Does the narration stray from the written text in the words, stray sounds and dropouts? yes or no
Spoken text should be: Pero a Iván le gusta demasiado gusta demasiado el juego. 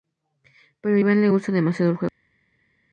yes